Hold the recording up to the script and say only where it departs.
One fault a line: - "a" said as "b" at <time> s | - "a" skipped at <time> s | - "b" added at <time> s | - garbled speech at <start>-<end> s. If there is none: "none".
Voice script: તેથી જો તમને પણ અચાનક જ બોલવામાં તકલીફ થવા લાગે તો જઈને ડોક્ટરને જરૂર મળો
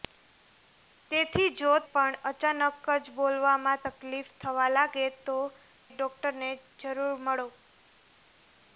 - "તમને" skipped at 1.7 s
- "જઈને" skipped at 5.4 s